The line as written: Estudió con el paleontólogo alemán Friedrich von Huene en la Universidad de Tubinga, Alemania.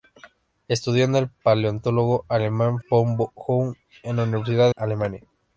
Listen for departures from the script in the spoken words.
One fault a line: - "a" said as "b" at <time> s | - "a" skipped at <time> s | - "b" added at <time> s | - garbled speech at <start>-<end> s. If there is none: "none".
- "Friedrich" skipped at 2.8 s
- "de Tubinga" skipped at 4.7 s